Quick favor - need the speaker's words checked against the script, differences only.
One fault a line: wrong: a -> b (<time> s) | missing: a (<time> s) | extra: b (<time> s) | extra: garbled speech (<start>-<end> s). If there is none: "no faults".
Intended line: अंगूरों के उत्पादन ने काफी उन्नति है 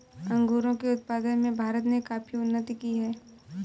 extra: में भारत (1.4 s)
extra: की (2.8 s)